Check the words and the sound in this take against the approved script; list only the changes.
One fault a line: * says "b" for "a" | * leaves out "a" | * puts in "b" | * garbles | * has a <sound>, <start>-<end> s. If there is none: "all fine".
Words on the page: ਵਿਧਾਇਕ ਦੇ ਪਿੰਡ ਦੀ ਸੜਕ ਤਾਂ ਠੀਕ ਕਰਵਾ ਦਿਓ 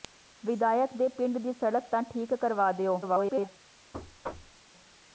* garbles
* has a thud, 3.9-4.6 s